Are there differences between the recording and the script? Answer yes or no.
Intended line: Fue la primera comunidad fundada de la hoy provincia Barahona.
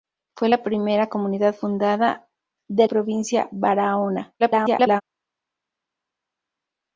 yes